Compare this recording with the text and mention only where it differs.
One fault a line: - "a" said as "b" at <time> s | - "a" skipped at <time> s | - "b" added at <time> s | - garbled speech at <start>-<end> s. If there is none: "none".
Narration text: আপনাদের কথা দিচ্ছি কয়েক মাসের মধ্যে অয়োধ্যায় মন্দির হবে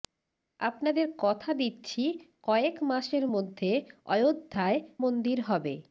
none